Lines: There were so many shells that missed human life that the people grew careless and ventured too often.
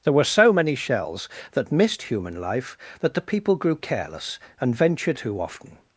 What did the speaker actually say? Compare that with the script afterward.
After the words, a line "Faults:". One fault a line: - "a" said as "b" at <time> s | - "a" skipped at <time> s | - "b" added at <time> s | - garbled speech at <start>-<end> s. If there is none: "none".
There were so many shells that missed human life that the people grew careless and ventured too often.
Faults:
none